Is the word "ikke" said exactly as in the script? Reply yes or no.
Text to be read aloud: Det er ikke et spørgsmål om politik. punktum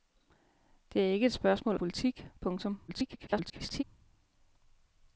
yes